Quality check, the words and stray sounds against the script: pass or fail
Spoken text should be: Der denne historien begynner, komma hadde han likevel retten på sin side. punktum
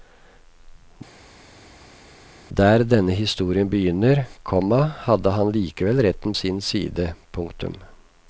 fail